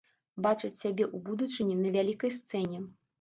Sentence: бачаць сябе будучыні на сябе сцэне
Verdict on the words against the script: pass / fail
fail